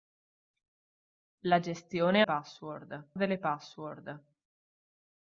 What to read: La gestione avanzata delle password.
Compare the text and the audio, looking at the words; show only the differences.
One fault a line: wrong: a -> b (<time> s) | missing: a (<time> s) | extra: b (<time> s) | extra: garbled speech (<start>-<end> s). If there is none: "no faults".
wrong: avanzata -> password (2.2 s)